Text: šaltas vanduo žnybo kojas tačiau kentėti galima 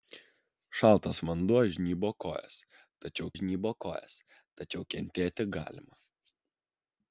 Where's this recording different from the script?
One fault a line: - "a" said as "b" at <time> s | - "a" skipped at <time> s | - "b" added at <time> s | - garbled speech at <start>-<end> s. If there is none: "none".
- "žnybo kojas tačiau" added at 3.4 s